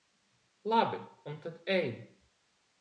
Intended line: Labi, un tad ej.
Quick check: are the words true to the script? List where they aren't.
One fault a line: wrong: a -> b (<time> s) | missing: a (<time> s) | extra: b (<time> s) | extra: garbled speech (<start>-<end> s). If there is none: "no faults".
no faults